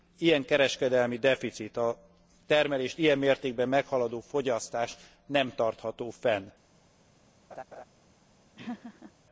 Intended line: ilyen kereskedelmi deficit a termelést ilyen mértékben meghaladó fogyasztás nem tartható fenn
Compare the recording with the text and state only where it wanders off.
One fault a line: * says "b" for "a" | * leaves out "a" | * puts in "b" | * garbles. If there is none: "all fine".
all fine